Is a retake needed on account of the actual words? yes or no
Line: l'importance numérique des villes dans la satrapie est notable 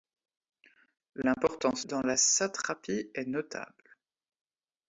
yes